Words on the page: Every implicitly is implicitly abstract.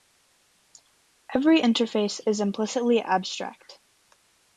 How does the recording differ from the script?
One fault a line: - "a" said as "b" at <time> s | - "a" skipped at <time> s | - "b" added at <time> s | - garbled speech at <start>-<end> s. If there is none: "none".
- "implicitly" said as "interface" at 1.6 s